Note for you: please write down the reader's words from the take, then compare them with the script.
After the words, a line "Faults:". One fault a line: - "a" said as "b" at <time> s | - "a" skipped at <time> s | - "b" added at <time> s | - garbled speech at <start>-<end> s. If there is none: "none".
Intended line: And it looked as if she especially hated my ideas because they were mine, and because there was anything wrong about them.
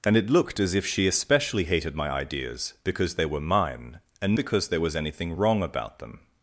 And it looked as if she especially hated my ideas because they were mine, and because there was anything wrong about them.
Faults:
none